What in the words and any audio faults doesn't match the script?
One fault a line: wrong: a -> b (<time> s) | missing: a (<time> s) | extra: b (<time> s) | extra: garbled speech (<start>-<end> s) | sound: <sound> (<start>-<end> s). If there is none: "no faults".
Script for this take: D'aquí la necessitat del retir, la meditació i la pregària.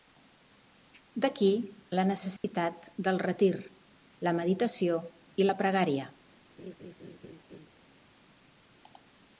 sound: dropout (2.4-2.4 s)
sound: laugh (6.6-7.7 s)